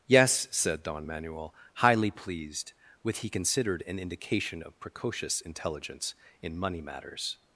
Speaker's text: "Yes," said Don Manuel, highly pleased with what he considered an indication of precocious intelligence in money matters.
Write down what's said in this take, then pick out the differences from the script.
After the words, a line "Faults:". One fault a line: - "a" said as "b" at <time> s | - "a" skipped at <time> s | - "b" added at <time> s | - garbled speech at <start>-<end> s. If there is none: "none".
"Yes," said Don Manuel, highly pleased with he considered an indication of precocious intelligence in money matters.
Faults:
- "what" skipped at 3.2 s